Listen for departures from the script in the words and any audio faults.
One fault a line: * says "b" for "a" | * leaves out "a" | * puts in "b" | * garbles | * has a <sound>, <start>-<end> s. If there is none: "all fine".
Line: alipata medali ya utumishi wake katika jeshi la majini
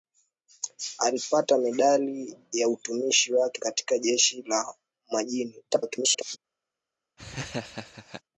* garbles
* has a laugh, 7.2-8.2 s